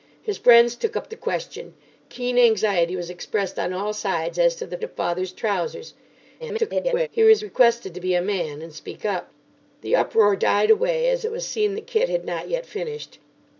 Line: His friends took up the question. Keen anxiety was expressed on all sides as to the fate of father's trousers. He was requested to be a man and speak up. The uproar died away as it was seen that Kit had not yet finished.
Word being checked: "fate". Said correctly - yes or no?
no